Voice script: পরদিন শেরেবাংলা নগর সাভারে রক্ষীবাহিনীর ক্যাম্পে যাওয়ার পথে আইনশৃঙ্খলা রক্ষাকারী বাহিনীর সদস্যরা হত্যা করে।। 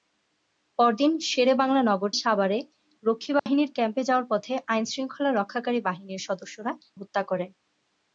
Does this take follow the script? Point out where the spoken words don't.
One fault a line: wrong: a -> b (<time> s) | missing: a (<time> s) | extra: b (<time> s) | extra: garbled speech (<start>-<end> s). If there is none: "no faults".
no faults